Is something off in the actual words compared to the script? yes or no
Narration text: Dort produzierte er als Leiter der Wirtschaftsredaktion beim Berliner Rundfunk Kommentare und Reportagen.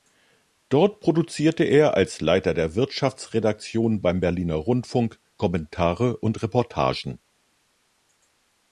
no